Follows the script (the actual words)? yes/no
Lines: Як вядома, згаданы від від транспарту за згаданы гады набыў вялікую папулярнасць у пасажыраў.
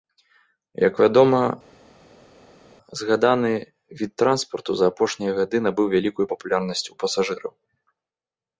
no